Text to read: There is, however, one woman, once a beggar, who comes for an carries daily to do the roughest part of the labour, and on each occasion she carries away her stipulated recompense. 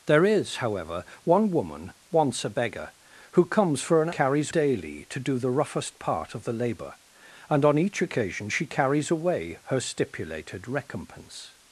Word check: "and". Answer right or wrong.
right